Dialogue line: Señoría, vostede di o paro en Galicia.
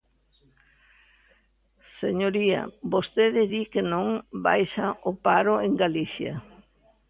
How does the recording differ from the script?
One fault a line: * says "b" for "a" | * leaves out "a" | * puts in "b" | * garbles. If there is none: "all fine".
* puts in "que non baixa"